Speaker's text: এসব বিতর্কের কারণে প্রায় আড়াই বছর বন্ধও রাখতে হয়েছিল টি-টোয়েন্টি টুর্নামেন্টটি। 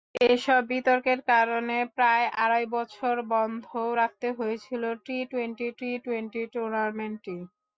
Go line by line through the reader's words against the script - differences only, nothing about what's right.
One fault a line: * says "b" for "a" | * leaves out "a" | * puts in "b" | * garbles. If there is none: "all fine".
* puts in "টি-টোয়েন্টি"